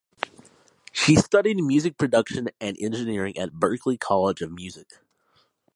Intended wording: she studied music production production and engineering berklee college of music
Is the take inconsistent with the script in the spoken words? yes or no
yes